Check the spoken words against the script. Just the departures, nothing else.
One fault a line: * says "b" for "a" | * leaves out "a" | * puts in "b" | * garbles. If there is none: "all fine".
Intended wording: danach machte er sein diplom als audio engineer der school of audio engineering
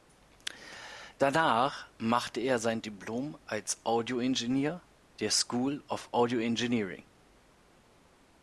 all fine